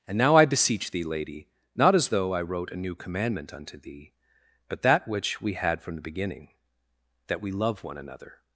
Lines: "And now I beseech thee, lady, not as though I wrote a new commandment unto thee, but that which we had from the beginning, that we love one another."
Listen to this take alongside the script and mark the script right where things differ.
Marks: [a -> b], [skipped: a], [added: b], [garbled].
"And now I beseech thee, lady, not as though I wrote a new commandment unto thee, but that which we had from the beginning, that we love one another."